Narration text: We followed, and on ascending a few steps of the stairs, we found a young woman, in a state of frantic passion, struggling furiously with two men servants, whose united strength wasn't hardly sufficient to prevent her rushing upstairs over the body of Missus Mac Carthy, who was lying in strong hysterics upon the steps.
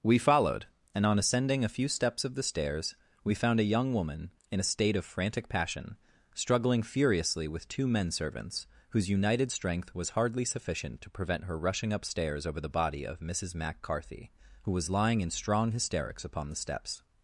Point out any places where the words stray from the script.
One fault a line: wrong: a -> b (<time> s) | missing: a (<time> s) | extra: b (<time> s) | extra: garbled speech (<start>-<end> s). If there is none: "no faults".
wrong: wasn't -> was (9.9 s)